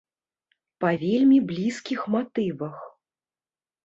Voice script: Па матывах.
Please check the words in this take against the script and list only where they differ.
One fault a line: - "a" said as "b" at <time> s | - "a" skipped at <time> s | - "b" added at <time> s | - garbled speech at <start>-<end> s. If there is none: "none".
- "вельмі блізкіх" added at 1.0 s